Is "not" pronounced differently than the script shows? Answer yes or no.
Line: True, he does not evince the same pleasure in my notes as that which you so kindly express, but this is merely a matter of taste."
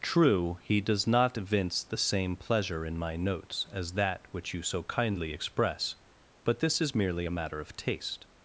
no